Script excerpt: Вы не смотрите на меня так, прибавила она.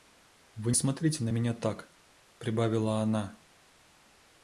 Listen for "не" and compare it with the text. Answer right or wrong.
wrong